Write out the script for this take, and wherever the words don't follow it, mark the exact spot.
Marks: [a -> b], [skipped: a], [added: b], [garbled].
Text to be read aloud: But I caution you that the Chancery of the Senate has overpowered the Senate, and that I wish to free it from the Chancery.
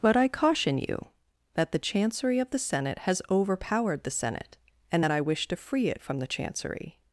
But I caution you that the Chancery of the Senate has overpowered the Senate, and that I wish to free it from the Chancery.